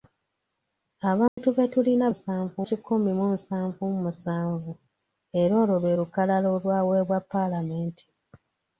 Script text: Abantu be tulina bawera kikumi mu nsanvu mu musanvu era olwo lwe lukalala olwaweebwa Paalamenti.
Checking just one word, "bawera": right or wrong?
wrong